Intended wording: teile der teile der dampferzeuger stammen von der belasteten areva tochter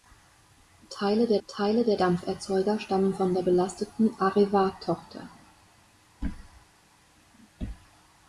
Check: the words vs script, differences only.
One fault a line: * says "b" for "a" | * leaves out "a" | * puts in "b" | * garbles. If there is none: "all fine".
all fine